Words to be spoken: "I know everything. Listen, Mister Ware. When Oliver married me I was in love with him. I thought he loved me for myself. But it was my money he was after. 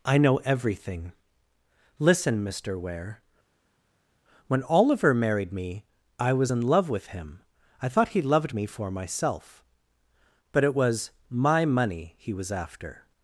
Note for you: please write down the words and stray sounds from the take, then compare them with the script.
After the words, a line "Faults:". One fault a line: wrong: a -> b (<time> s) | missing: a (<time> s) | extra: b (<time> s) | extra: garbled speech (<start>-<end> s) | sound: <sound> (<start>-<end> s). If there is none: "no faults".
"I know everything. Listen, Mister Ware. When Oliver married me I was in love with him. I thought he loved me for myself. But it was my money he was after.
Faults:
no faults